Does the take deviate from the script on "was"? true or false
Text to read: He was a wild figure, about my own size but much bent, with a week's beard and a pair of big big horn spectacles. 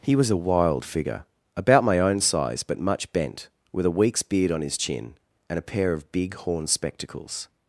false